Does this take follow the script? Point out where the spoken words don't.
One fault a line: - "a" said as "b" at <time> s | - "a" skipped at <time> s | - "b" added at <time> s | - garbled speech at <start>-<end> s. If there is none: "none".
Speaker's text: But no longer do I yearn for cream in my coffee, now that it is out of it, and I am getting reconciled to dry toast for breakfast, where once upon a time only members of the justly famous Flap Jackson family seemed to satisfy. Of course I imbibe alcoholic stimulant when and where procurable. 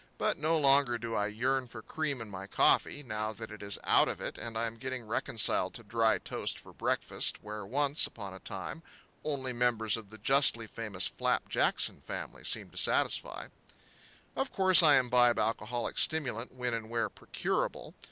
none